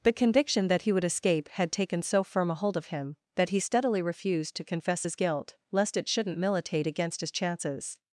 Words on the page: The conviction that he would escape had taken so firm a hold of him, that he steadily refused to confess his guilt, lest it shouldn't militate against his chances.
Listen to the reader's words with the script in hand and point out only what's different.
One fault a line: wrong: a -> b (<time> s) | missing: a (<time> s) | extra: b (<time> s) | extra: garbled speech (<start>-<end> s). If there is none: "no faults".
no faults